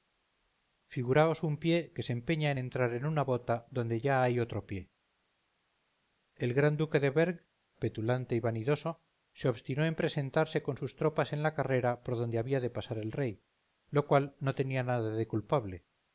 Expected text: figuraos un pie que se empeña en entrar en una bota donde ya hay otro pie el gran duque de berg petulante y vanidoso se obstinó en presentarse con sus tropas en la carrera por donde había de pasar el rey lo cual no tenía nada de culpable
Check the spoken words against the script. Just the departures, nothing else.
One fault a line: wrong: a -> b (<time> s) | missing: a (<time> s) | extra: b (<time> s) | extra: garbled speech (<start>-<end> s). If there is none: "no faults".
no faults